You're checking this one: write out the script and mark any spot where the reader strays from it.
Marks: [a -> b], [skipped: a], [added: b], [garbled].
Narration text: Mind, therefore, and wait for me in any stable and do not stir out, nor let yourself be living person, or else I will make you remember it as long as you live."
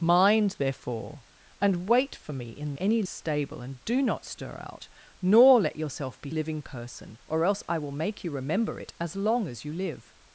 Mind, therefore, and wait for me in any stable and do not stir out, nor let yourself be living person, or else I will make you remember it as long as you live."